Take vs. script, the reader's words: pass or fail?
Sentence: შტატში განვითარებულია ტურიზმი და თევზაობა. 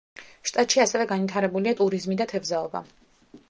fail